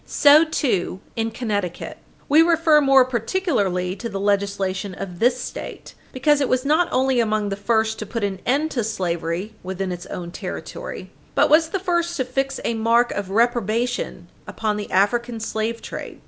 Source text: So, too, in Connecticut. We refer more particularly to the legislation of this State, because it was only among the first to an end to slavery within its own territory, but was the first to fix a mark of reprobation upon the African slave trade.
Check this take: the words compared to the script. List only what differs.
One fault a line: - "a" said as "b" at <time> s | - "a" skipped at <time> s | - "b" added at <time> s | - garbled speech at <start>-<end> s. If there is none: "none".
- "not" added at 6.7 s
- "put" added at 8.1 s